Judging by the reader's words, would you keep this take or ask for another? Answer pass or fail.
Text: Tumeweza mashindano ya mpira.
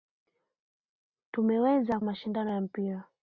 pass